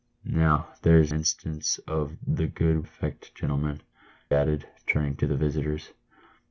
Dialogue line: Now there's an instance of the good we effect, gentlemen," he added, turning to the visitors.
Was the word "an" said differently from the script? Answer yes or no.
yes